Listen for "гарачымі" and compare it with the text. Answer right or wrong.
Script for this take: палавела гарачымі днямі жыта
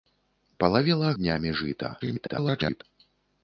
wrong